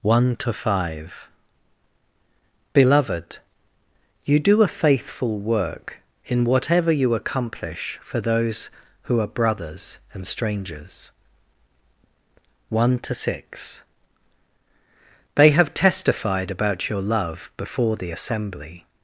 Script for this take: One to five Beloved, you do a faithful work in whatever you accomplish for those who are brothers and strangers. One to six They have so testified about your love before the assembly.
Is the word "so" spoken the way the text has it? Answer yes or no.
no